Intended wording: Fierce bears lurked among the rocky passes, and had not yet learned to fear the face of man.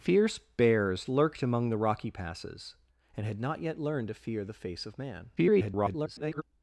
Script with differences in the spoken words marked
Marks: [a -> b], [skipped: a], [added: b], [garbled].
Fierce bears lurked among the rocky passes, and had not yet learned to fear the face of man. [garbled]